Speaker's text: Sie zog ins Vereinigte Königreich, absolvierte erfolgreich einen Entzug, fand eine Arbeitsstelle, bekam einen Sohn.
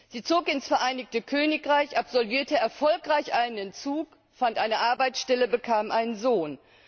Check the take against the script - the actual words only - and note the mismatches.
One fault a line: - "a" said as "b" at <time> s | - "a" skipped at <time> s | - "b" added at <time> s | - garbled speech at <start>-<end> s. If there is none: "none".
none